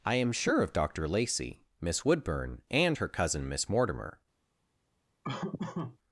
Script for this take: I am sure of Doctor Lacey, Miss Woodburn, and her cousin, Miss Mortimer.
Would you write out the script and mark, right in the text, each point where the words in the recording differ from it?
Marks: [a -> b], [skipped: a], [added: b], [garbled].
I am sure of Doctor Lacey, Miss Woodburn, and her cousin, Miss Mortimer.